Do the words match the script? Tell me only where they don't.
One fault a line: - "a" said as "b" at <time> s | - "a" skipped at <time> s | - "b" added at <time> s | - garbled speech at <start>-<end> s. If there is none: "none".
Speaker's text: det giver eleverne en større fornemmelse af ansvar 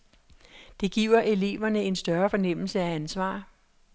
none